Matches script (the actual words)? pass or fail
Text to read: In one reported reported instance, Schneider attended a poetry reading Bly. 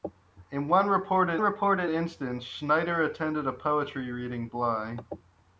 pass